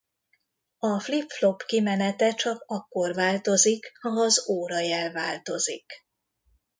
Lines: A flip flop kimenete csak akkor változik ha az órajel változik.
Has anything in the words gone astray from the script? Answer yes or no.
no